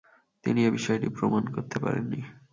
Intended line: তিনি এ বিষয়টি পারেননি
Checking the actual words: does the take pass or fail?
fail